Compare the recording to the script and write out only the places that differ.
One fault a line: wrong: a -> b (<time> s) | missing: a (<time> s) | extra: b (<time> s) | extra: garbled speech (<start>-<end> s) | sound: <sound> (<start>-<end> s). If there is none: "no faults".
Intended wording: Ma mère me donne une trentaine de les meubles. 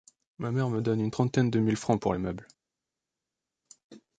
extra: mille francs pour (1.6 s)